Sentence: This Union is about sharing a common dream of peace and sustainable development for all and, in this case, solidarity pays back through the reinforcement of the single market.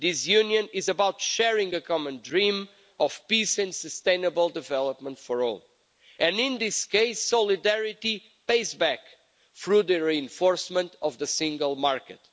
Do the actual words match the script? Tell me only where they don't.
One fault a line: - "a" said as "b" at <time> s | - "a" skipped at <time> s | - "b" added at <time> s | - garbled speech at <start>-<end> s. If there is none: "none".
none